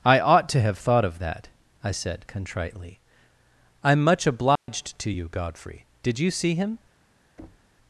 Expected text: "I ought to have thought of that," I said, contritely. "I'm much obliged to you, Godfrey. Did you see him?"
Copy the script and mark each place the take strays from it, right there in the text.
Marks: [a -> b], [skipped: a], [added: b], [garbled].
"I ought to have thought of that," I said, contritely. "I'm much obliged to you, Godfrey. Did you see him?"